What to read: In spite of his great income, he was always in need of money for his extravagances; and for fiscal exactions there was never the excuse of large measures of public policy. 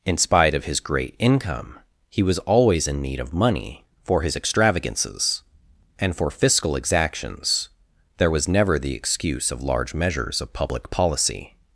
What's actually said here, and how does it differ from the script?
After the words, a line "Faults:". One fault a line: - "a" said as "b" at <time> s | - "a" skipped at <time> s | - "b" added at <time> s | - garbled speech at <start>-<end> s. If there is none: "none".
In spite of his great income, he was always in need of money for his extravagances; and for fiscal exactions there was never the excuse of large measures of public policy.
Faults:
none